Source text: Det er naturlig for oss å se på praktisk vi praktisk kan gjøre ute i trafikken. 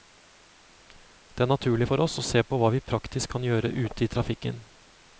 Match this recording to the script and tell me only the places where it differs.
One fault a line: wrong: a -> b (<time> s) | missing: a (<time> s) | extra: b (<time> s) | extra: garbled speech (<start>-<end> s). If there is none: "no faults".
wrong: praktisk -> hva (2.6 s)